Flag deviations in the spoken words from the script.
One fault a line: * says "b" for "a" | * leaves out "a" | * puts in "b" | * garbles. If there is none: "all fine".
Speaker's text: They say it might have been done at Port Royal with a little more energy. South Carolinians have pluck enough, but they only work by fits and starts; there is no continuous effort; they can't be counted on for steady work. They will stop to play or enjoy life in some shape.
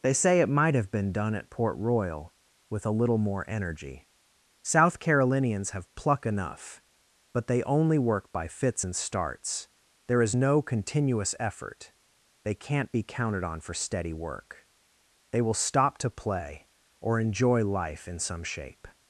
all fine